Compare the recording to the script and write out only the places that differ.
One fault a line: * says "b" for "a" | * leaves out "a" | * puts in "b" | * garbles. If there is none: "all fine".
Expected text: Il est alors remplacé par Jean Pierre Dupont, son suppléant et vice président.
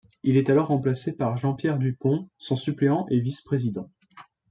all fine